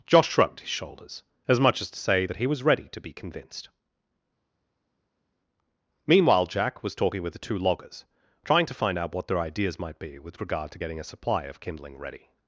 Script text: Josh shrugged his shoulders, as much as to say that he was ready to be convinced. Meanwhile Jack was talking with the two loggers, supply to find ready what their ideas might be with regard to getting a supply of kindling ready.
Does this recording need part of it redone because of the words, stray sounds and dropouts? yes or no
yes